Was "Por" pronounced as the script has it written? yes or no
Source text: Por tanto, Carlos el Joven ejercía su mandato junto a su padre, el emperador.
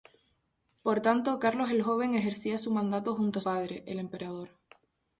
yes